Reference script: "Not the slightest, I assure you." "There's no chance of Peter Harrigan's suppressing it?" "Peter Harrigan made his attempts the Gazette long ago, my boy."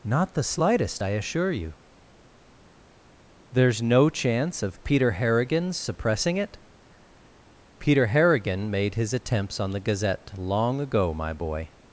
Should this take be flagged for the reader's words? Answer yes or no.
yes